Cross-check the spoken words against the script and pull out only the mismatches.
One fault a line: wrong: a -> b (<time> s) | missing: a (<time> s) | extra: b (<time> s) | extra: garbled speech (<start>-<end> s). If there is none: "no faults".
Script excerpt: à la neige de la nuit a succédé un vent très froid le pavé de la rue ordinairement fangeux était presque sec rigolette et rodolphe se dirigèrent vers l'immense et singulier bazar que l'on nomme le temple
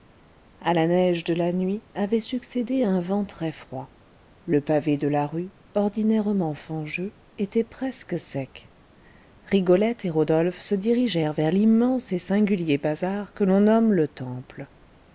wrong: a -> avait (1.9 s)